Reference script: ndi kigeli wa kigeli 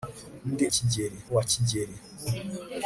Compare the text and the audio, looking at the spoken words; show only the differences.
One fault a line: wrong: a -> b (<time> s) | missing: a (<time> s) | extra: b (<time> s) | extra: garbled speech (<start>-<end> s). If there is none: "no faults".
no faults